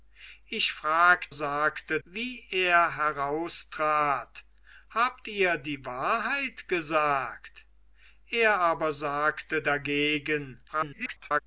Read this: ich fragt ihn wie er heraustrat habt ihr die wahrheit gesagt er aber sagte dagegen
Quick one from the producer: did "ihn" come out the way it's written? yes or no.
no